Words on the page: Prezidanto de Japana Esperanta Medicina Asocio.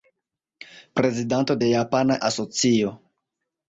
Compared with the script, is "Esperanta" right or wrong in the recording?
wrong